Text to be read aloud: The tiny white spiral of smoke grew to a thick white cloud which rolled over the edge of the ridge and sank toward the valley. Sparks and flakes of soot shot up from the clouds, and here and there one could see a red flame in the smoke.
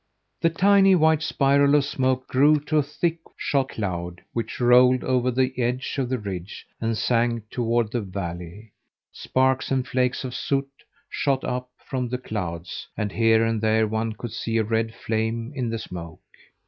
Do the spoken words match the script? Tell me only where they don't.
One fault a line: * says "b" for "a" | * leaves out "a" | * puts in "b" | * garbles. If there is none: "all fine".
* says "shot" for "white"